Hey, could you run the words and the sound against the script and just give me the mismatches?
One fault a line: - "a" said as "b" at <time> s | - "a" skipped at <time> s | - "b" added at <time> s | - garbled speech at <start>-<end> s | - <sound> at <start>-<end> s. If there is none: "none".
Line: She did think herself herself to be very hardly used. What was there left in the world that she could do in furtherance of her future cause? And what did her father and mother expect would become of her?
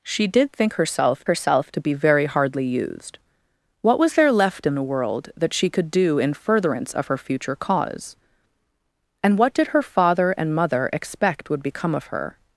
none